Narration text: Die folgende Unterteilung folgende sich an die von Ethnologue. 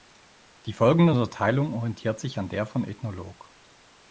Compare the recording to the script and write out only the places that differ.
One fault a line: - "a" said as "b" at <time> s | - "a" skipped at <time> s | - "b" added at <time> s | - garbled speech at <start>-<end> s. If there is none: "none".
- "folgende" said as "orientiert" at 1.7 s
- "die" said as "der" at 2.5 s